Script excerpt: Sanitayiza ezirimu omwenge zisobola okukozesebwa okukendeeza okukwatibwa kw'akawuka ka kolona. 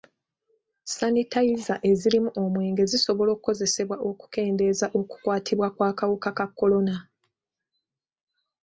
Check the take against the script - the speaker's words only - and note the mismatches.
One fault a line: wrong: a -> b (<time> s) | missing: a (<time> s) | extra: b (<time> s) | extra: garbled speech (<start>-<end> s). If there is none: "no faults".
no faults